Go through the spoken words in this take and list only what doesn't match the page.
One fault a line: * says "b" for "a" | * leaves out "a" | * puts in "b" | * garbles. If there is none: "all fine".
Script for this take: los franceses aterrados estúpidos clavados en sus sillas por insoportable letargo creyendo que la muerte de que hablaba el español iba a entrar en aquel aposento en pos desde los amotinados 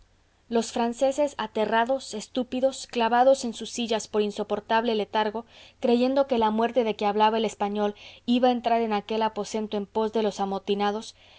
* says "de" for "desde"